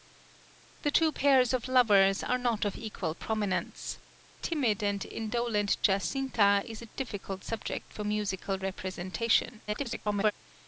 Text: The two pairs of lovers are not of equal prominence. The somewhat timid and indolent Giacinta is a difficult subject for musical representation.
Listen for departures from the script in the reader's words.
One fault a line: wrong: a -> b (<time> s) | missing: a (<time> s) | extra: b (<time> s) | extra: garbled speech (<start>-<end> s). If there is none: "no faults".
missing: The somewhat (4.0 s)
extra: garbled speech (9.7-10.3 s)